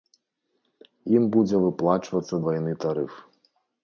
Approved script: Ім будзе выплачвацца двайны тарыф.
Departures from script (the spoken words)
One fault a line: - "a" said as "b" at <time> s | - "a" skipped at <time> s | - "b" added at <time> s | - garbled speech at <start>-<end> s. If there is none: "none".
none